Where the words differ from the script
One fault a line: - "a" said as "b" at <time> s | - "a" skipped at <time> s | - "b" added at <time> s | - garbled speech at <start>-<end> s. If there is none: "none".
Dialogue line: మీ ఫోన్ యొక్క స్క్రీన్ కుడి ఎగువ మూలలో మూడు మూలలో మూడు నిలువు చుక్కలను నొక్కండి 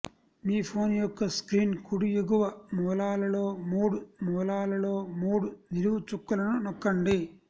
none